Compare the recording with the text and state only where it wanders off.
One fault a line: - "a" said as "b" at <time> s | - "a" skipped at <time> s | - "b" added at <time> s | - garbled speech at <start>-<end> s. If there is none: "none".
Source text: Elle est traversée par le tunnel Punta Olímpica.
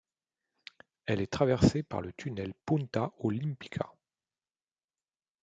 none